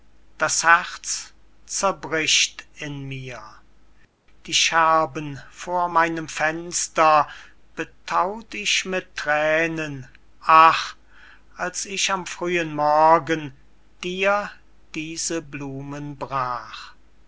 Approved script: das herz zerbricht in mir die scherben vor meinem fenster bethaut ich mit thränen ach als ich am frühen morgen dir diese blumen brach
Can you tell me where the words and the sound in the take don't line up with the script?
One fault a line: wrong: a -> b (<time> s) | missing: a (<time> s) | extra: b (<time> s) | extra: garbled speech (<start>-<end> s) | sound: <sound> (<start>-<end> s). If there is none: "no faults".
no faults